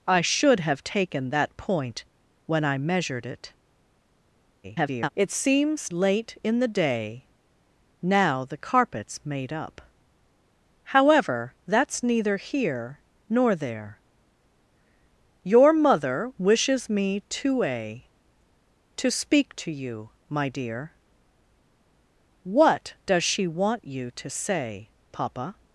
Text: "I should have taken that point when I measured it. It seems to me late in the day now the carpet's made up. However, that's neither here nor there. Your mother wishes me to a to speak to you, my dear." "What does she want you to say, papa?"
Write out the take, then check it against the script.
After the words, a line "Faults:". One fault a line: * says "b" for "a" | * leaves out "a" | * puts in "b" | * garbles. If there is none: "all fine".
"I should have taken that point when I measured it. [garbled] It seems late in the day now the carpet's made up. However, that's neither here nor there. Your mother wishes me to a to speak to you, my dear." "What does she want you to say, papa?"
Faults:
* garbles
* leaves out "to me"